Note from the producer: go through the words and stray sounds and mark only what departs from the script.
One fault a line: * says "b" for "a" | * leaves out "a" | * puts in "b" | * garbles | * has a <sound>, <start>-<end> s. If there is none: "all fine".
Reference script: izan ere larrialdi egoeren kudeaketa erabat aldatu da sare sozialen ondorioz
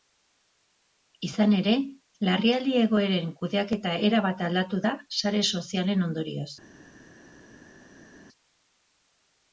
all fine